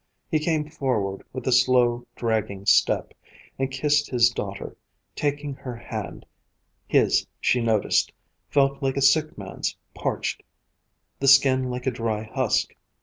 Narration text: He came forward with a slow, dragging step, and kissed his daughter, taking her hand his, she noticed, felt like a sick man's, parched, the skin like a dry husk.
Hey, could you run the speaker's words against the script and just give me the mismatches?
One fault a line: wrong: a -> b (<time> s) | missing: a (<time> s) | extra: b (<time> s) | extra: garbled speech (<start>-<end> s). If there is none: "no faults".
no faults